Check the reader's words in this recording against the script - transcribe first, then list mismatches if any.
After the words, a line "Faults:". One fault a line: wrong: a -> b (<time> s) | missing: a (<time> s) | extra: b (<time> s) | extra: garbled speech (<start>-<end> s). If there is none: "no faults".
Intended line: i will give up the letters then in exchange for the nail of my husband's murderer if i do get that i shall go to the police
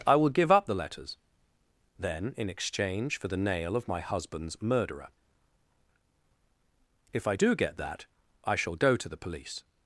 i will give up the letters then in exchange for the nail of my husband's murderer if i do get that i shall go to the police
Faults:
no faults